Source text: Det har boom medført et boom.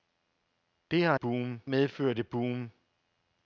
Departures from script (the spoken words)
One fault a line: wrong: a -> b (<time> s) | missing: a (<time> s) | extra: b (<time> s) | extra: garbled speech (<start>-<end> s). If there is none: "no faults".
no faults